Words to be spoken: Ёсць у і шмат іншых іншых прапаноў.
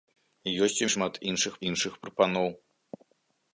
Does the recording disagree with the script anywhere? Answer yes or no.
no